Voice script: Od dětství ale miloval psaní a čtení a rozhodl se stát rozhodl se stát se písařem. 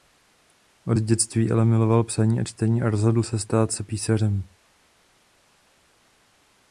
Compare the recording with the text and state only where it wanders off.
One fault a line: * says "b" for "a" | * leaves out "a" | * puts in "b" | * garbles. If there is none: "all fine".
* leaves out "rozhodl se stát"